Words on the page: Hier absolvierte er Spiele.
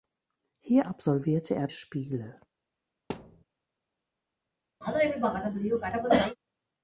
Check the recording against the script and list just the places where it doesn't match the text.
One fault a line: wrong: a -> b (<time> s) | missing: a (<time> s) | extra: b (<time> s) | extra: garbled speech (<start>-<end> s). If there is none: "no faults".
no faults